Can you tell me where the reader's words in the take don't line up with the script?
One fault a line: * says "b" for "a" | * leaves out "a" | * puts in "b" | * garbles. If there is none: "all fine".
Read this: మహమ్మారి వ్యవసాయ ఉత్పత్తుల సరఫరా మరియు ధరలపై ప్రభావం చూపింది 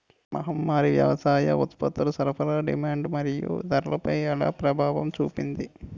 * puts in "డిమాండ్"
* puts in "ఎలా"